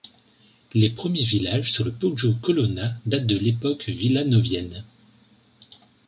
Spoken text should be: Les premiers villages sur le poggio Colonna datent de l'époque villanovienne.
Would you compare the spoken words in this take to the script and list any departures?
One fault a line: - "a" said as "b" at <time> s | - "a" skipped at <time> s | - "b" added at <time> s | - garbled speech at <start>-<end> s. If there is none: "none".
none